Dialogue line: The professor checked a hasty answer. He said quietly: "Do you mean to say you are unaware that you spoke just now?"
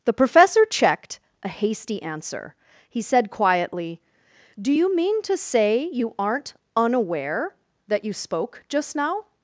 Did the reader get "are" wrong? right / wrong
wrong